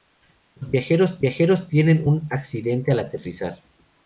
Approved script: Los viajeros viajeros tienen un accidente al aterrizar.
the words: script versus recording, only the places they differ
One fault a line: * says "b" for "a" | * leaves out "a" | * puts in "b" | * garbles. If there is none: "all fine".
all fine